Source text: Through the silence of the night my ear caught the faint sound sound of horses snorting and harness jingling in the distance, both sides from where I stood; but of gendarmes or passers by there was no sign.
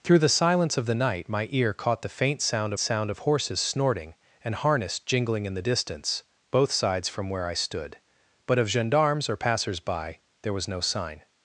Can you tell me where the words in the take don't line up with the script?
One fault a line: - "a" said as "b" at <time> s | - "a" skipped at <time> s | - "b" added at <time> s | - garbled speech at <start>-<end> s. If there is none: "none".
none